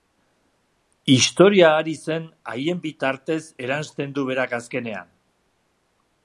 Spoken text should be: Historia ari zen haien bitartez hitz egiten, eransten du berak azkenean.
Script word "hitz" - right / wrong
wrong